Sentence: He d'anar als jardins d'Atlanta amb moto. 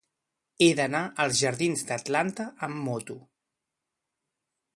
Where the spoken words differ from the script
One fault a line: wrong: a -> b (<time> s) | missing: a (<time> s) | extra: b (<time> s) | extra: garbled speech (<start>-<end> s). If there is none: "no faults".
no faults